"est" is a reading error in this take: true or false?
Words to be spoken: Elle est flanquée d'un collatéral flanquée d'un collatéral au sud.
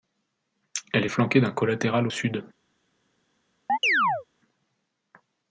false